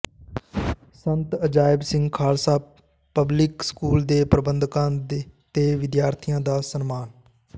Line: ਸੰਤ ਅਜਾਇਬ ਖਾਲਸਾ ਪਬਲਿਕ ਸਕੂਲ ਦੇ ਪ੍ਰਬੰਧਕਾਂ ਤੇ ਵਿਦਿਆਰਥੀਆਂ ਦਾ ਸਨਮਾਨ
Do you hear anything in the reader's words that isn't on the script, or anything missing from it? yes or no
yes